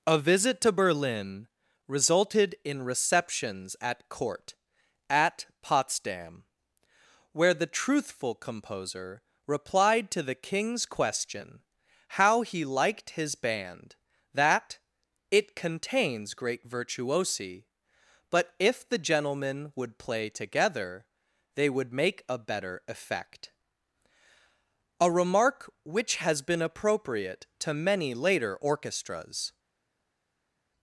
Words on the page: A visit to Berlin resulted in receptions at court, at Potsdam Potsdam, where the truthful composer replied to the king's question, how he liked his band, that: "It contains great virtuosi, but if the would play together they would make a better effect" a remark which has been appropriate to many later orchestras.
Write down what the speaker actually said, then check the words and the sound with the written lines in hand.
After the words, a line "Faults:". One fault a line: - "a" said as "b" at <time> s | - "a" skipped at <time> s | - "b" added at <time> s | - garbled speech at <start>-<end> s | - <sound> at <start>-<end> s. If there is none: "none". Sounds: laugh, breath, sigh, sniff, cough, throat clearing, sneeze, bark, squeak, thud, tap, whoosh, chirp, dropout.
A visit to Berlin resulted in receptions at court, at Potsdam, where the truthful composer replied to the king's question, how he liked his band, that: "It contains great virtuosi, but if the gentlemen would play together they would make a better effect" a remark which has been appropriate to many later orchestras.
Faults:
- "Potsdam" skipped at 6.5 s
- "gentlemen" added at 19.0 s